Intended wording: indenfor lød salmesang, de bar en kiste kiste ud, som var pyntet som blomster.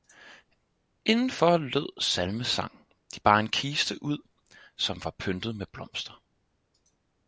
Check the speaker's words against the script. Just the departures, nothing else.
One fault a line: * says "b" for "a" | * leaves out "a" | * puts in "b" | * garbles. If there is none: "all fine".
* leaves out "kiste"
* says "med" for "som"